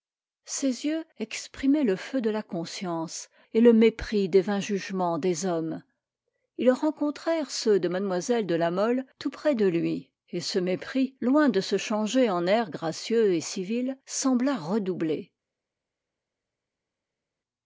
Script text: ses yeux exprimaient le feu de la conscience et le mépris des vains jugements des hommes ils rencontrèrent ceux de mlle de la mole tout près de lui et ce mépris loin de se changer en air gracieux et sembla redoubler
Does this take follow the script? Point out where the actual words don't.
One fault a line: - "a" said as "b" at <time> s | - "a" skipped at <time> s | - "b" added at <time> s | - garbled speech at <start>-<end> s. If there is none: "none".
- "civil" added at 13.4 s